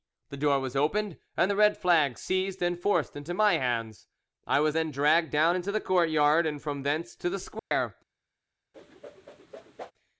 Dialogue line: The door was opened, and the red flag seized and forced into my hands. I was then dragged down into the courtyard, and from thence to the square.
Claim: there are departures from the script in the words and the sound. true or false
true